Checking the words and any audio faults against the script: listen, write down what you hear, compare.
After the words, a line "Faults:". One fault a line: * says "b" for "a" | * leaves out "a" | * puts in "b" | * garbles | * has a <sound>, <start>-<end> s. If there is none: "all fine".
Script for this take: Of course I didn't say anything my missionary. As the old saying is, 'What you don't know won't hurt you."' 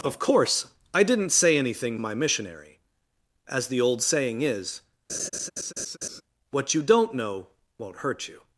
Of course I didn't say anything my missionary. As the old saying is, 'What you don't know won't hurt you."'
Faults:
* has a laugh, 5.1-6.2 s